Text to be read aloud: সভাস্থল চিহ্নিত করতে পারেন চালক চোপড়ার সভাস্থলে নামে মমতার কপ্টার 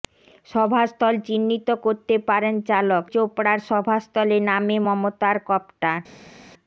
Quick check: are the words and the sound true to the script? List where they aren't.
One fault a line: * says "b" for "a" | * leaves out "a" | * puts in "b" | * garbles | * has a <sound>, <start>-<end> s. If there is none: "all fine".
all fine